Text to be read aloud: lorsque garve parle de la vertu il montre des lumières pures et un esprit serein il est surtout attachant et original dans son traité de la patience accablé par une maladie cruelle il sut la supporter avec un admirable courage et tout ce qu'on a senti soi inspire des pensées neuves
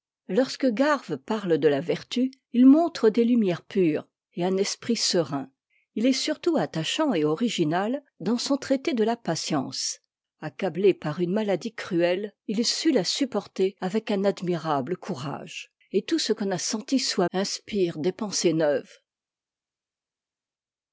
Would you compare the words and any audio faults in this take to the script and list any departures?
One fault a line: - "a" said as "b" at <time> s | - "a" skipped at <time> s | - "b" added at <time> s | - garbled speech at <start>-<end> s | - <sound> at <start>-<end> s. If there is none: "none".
none